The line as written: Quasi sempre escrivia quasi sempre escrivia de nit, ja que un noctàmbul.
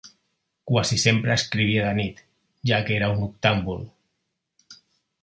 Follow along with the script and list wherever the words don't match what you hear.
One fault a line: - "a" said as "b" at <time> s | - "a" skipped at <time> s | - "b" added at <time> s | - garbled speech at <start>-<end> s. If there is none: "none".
- "quasi sempre escrivia" skipped at 1.8 s
- "era" added at 3.0 s